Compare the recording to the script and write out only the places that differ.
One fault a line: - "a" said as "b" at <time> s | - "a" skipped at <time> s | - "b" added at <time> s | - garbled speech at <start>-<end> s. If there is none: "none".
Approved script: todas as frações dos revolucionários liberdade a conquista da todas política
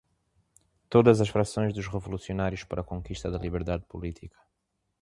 - "liberdade" said as "para" at 2.6 s
- "todas" said as "liberdade" at 3.4 s